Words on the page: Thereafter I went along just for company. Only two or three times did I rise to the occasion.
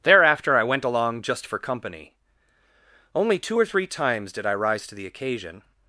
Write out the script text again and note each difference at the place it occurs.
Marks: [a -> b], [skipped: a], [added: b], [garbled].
Thereafter I went along just for company. Only two or three times did I rise to the occasion.